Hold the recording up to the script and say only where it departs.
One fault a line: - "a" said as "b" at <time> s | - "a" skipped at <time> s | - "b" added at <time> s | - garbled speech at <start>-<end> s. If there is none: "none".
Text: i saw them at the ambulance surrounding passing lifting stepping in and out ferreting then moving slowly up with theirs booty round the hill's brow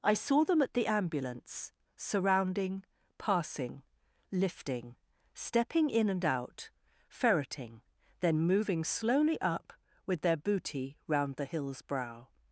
- "theirs" said as "their" at 10.2 s